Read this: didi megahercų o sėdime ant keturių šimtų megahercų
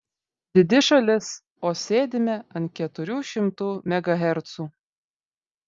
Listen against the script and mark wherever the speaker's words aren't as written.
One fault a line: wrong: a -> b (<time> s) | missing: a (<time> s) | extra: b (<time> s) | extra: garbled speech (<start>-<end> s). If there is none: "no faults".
wrong: megahercų -> šalis (0.9 s)